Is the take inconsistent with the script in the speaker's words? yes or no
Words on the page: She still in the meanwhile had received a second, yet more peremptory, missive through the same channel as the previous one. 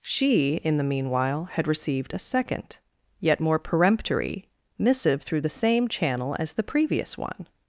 yes